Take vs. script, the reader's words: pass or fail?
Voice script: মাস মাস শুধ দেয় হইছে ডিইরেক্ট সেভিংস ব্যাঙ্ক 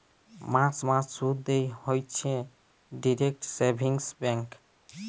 pass